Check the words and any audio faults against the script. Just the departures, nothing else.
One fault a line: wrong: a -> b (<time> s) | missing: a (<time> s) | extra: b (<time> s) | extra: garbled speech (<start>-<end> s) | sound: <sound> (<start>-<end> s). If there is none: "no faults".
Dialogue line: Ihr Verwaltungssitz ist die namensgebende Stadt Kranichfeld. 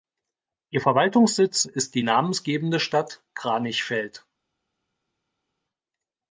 no faults